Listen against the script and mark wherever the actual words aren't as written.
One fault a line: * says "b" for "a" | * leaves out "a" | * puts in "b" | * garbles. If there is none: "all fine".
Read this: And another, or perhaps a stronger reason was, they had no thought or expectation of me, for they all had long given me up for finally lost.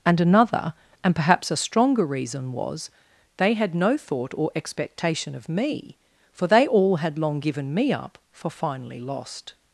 * says "and" for "or"